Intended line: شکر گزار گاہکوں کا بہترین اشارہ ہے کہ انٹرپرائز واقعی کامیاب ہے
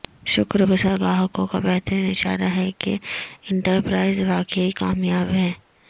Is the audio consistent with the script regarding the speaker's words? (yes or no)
yes